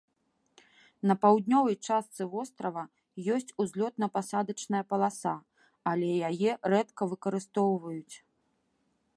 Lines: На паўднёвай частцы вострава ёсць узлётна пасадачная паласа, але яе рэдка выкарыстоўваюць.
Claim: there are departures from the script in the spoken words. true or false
false